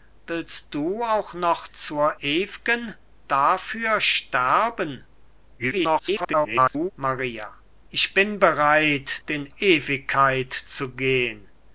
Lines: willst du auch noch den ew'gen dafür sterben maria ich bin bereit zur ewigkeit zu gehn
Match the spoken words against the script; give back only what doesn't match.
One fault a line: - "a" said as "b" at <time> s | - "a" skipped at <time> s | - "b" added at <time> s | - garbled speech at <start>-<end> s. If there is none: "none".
- "den" said as "zur" at 1.7 s
- garbled speech at 5.6-6.9 s
- "zur" said as "den" at 9.2 s